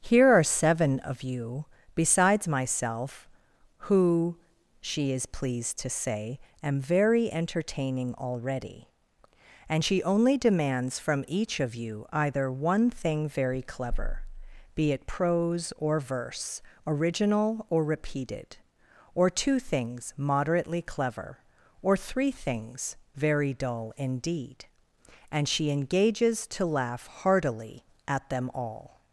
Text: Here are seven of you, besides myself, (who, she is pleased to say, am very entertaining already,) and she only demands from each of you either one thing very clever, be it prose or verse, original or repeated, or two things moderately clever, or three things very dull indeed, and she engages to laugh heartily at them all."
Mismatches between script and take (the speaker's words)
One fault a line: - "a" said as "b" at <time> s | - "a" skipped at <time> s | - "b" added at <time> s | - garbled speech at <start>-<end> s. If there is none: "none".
none